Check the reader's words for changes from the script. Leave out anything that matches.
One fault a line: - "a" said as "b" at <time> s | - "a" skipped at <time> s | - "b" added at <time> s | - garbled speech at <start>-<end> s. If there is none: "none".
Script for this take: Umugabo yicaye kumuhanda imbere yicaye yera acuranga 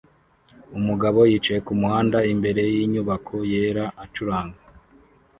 - "yicaye" said as "yinyubako" at 2.7 s